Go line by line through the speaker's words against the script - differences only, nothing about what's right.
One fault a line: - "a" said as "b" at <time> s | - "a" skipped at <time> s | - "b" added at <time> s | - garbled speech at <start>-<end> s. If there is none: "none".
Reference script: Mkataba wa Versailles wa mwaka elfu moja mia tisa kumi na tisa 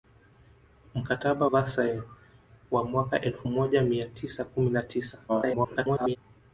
- "wa" skipped at 1.5 s
- garbled speech at 5.3-6.2 s